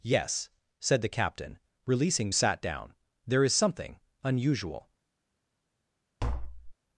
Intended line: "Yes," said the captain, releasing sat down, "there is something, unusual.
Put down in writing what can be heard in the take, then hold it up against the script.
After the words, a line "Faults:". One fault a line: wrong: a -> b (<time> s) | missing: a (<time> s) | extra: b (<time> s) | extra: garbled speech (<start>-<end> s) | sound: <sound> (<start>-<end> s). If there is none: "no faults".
"Yes," said the captain, releasing sat down, "there is something, unusual.
Faults:
sound: tap (6.2-6.7 s)